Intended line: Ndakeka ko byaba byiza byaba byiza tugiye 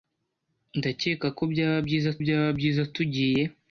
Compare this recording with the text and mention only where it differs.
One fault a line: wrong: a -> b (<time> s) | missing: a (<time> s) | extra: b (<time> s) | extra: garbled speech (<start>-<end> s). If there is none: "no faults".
no faults